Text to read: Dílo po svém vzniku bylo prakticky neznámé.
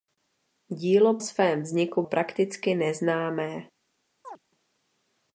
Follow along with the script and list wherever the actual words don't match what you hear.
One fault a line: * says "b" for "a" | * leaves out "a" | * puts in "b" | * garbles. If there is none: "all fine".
* leaves out "po"
* leaves out "bylo"